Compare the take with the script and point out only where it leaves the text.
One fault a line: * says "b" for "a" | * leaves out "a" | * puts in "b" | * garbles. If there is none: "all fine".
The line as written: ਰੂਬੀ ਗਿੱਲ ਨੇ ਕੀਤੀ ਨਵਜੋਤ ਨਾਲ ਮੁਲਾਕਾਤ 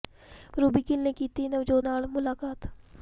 all fine